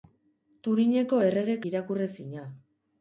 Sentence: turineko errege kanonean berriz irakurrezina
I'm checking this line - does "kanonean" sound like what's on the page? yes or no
no